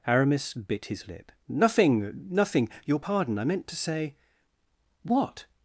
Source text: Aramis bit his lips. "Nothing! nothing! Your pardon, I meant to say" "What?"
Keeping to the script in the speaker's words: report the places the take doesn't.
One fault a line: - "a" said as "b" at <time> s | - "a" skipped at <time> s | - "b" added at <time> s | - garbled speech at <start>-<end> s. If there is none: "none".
- "lips" said as "lip" at 1.1 s